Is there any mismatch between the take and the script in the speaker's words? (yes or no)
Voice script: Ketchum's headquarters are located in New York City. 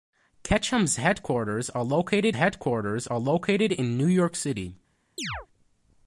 yes